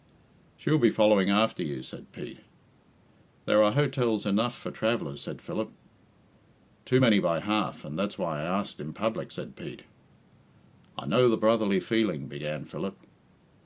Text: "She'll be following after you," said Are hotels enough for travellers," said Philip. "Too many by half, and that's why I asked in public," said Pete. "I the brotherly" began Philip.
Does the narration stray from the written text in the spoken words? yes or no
yes